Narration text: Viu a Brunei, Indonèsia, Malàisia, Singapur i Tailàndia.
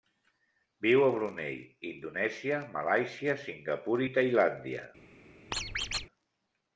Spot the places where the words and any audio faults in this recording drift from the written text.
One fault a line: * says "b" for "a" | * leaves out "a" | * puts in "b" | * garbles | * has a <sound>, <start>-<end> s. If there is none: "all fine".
* has a squeak, 5.5-6.1 s